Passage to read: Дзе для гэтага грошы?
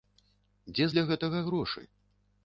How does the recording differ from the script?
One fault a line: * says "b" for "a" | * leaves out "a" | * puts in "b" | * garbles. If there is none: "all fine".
all fine